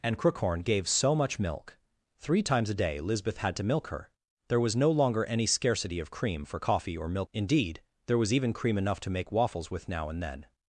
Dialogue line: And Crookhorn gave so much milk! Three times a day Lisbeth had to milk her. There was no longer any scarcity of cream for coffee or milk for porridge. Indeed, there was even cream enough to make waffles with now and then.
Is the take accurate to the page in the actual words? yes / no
no